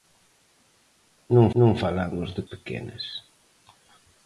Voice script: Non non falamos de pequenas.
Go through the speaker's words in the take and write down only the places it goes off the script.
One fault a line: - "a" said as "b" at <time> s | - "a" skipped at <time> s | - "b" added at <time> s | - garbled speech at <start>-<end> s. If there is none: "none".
none